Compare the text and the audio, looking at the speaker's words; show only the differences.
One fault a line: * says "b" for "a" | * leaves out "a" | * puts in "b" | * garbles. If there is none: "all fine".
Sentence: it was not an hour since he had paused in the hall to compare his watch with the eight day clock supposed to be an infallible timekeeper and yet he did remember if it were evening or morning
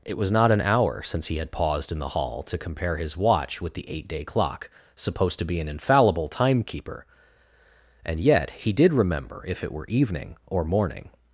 all fine